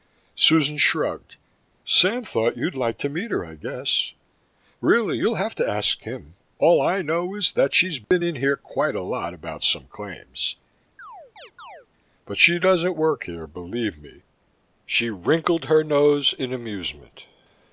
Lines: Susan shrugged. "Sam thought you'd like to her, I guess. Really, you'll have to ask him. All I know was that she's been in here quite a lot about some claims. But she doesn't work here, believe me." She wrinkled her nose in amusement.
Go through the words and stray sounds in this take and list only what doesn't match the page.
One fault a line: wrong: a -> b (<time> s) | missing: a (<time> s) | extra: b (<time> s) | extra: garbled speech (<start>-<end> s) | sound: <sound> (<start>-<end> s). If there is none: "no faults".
extra: meet (3.1 s)
wrong: was -> is (7.3 s)
sound: dropout (8.0-8.1 s)
sound: chirp (11.0-11.9 s)